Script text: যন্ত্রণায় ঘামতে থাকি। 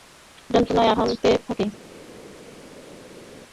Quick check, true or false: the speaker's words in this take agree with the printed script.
true